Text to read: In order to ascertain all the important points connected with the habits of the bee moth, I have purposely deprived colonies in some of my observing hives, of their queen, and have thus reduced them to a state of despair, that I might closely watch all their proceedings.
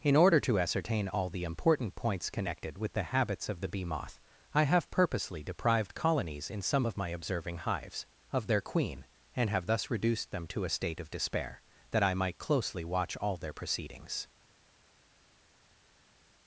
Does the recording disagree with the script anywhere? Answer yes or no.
no